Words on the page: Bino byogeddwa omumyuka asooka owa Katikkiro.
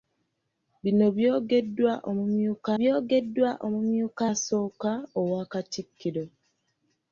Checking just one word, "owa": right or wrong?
right